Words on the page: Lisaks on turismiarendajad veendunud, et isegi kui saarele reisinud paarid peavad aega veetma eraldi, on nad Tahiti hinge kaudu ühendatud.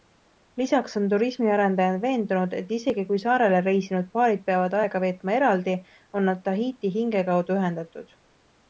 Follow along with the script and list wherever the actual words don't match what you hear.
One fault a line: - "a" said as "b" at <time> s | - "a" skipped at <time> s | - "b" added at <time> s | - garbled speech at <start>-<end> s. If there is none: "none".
none